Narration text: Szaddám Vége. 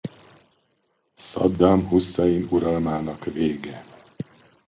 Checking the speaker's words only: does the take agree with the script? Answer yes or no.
no